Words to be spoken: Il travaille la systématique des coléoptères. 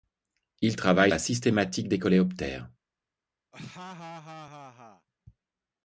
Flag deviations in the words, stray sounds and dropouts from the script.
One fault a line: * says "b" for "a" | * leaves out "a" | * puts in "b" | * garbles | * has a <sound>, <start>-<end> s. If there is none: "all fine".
* has a laugh, 3.5-5.1 s